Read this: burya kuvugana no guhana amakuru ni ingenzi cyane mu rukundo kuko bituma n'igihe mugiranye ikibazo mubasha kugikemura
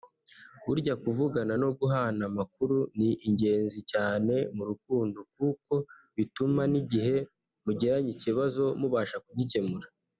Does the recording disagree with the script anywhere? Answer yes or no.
no